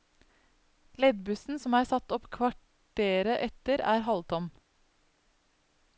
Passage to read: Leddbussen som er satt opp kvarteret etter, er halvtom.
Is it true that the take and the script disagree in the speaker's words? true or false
false